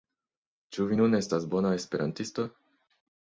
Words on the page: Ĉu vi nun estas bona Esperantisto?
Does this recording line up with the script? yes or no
yes